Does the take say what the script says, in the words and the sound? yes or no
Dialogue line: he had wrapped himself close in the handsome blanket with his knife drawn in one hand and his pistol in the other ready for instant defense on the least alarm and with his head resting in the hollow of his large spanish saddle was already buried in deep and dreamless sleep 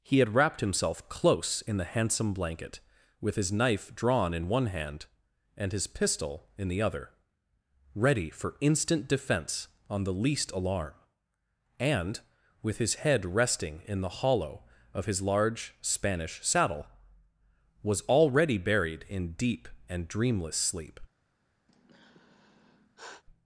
no